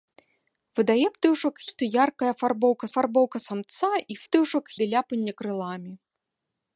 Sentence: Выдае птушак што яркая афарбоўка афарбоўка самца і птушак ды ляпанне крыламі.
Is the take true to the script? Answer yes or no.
yes